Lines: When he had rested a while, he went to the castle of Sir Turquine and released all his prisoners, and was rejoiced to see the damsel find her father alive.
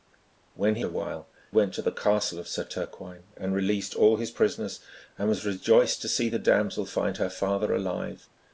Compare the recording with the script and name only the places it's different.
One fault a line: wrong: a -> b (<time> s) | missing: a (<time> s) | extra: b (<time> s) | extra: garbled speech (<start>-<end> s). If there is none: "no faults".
missing: had rested (0.8 s)
missing: he (1.3 s)